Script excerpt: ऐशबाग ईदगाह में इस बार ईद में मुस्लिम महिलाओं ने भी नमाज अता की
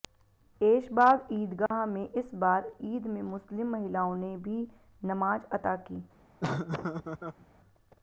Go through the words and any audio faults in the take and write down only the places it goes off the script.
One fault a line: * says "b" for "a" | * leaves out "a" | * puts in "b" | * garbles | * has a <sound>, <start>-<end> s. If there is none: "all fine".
* has a dropout, 1.7-1.7 s
* has a laugh, 6.4-7.5 s